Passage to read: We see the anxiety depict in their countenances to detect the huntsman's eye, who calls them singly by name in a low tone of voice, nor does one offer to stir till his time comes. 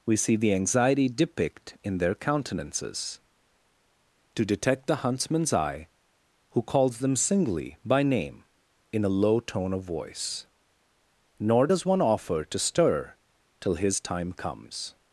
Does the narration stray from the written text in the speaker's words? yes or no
no